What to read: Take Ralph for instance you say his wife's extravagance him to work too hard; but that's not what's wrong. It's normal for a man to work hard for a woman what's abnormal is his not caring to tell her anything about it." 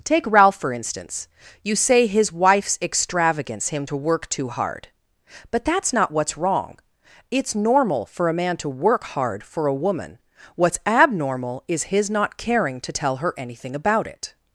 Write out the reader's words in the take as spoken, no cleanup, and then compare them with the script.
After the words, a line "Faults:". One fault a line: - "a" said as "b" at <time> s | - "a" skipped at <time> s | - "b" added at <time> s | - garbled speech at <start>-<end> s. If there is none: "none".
Take Ralph for instance you say his wife's extravagance him to work too hard; but that's not what's wrong. It's normal for a man to work hard for a woman what's abnormal is his not caring to tell her anything about it."
Faults:
none